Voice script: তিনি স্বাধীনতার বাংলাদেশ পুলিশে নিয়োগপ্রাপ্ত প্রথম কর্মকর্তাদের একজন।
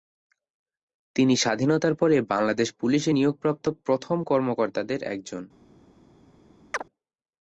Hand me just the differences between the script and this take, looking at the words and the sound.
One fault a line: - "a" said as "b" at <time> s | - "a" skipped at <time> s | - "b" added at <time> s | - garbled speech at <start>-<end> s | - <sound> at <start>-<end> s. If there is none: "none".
- "পরে" added at 1.9 s
- chirp at 6.7-6.8 s